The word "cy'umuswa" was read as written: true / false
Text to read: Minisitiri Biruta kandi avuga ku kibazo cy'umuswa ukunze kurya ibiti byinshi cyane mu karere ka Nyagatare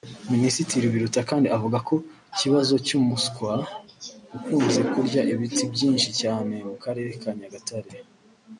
true